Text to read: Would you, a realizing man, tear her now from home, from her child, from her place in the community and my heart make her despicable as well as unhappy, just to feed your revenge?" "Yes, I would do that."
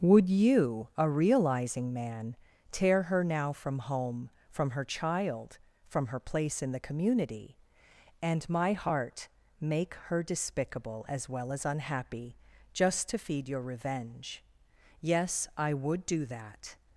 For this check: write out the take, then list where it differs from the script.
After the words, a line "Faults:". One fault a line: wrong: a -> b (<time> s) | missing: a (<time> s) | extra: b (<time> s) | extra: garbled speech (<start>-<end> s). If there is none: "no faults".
Would you, a realizing man, tear her now from home, from her child, from her place in the community and my heart make her despicable as well as unhappy, just to feed your revenge?" "Yes, I would do that."
Faults:
no faults